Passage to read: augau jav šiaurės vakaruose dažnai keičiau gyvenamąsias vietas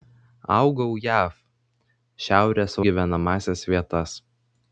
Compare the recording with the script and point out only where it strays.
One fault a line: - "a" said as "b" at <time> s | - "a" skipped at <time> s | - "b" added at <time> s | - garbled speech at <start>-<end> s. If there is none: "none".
- "vakaruose dažnai keičiau" skipped at 2.8 s